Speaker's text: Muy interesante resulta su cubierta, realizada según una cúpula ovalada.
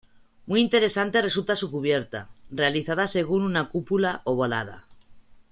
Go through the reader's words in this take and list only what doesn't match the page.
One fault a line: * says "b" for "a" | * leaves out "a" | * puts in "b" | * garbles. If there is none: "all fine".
all fine